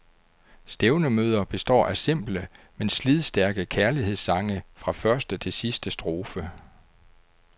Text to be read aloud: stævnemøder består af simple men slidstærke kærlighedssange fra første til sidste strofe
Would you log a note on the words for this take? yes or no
no